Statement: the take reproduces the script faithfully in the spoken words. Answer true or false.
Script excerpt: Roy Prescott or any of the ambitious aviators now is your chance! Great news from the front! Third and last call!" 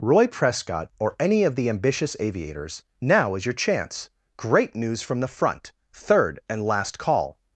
true